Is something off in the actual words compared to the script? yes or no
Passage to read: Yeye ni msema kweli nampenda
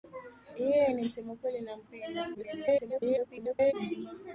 yes